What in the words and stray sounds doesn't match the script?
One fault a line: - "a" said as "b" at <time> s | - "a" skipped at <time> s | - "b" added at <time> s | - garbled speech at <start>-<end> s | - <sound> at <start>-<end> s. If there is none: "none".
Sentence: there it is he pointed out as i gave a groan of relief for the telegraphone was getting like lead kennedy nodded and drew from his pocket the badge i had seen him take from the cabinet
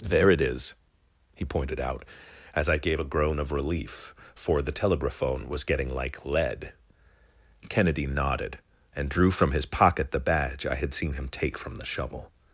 - "cabinet" said as "shovel" at 11.9 s